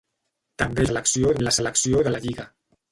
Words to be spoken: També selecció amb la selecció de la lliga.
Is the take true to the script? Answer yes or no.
yes